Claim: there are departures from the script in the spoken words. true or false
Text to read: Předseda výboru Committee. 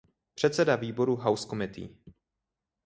true